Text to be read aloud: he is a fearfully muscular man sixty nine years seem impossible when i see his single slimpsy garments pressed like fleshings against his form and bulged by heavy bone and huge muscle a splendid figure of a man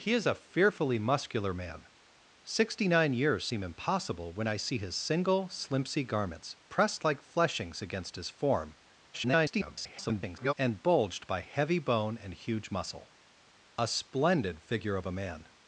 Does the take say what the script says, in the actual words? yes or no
no